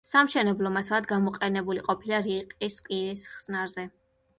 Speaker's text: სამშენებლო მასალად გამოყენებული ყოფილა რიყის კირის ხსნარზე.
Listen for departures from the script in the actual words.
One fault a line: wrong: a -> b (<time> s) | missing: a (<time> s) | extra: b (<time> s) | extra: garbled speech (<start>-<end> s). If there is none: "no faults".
no faults